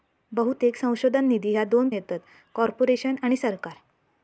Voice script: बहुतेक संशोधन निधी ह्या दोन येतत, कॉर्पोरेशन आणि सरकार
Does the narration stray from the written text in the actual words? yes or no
no